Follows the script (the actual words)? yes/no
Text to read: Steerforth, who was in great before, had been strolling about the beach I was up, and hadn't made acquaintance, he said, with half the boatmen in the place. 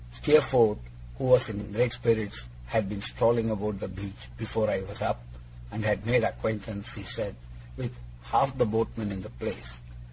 no